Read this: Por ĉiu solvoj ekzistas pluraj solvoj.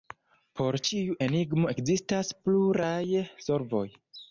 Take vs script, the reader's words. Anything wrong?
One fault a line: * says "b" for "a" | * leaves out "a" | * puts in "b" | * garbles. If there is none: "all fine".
* says "enigmo" for "solvoj"